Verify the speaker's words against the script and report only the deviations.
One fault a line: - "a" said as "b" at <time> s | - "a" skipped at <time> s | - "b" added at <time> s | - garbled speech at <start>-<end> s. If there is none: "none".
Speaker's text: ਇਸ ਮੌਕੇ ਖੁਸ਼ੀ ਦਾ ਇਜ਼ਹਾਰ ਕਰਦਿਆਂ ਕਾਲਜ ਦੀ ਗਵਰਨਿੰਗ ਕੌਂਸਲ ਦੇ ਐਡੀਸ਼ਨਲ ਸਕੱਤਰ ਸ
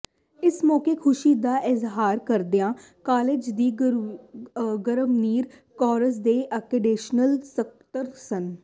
none